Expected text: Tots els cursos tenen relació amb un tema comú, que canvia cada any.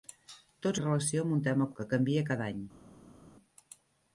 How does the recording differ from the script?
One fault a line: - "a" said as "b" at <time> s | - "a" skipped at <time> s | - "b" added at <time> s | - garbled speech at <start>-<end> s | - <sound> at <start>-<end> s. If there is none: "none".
- "els cursos tenen" skipped at 0.8 s
- "comú" skipped at 1.7 s